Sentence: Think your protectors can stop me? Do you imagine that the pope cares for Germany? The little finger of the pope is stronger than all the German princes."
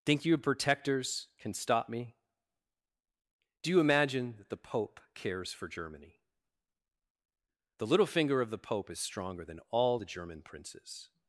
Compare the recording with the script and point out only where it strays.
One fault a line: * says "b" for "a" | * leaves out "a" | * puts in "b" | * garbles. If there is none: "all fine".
all fine